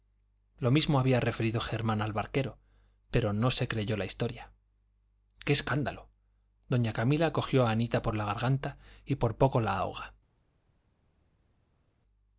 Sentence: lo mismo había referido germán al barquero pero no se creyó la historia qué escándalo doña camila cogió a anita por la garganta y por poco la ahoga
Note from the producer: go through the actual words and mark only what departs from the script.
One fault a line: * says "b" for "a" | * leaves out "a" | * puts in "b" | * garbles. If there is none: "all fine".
all fine